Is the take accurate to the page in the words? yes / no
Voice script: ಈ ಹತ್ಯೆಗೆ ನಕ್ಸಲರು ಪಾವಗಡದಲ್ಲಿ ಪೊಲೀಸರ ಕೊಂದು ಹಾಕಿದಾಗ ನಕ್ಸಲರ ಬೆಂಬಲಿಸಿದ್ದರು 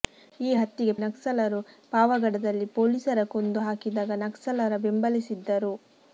yes